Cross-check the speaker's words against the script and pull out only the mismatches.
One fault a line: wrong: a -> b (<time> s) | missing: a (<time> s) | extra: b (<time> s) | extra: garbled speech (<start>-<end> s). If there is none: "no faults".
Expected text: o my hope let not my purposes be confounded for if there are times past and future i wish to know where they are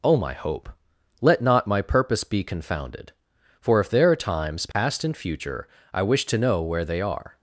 wrong: purposes -> purpose (1.8 s)